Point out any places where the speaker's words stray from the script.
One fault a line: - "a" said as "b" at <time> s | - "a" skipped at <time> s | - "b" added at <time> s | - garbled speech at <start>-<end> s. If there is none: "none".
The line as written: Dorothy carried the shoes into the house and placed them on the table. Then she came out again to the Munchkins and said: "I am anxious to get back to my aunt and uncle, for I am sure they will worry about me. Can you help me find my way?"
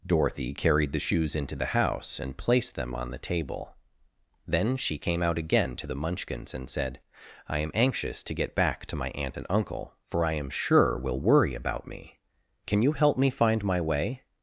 - "they" skipped at 11.0 s